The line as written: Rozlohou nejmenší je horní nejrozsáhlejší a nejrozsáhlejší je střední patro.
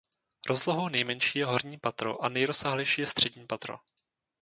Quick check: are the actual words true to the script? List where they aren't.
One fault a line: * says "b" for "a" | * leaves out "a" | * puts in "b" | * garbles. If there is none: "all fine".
* says "patro" for "nejrozsáhlejší"